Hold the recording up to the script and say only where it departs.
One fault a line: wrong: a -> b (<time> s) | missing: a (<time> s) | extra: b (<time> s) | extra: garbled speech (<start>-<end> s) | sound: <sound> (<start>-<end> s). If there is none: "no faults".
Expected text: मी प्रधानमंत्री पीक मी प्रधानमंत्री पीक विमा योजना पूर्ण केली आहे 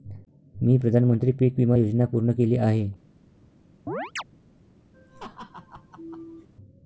missing: मी प्रधानमंत्री पीक (1.6 s)
sound: chirp (3.9-4.2 s)
sound: laugh (4.9-6.5 s)